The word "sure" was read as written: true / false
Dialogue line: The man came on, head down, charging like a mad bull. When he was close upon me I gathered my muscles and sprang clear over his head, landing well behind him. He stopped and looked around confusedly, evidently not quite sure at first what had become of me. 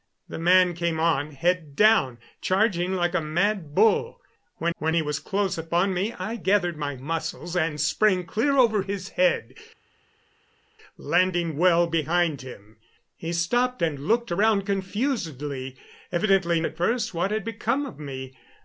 false